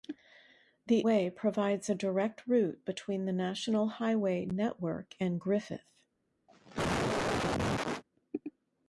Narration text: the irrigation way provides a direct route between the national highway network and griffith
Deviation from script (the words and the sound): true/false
true